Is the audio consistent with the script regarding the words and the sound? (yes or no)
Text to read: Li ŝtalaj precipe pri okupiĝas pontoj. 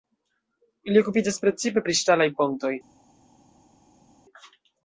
no